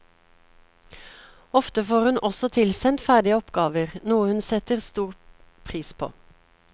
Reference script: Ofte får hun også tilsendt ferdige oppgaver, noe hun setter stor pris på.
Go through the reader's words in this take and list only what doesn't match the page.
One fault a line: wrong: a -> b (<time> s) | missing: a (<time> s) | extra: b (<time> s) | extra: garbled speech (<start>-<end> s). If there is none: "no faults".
no faults